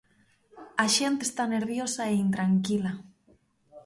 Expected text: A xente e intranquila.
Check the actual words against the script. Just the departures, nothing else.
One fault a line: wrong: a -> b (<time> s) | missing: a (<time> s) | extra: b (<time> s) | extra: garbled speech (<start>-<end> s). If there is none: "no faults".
extra: está nerviosa (1.2 s)